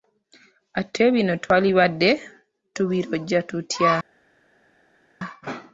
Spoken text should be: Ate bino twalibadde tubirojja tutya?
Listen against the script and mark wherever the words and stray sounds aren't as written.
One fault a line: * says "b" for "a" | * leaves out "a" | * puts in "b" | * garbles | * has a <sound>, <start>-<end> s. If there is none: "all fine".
all fine